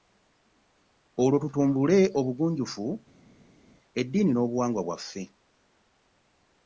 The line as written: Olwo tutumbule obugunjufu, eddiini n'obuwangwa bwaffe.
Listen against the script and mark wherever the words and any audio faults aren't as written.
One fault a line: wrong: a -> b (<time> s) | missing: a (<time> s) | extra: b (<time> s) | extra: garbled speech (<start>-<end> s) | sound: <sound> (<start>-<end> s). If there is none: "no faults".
no faults